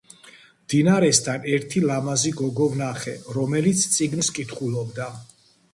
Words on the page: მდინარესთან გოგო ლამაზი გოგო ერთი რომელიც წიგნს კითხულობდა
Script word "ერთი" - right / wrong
wrong